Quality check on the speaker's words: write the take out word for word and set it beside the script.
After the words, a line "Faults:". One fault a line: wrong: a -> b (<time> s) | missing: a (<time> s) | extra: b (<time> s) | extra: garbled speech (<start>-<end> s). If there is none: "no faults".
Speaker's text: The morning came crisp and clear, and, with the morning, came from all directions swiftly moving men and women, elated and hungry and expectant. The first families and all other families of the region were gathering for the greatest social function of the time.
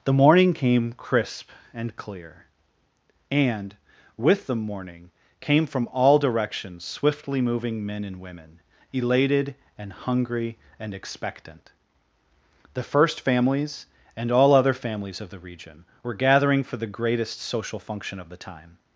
The morning came crisp and clear, and, with the morning, came from all directions swiftly moving men and women, elated and hungry and expectant. The first families and all other families of the region were gathering for the greatest social function of the time.
Faults:
no faults